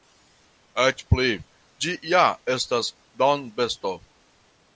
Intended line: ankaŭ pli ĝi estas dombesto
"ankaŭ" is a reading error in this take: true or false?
true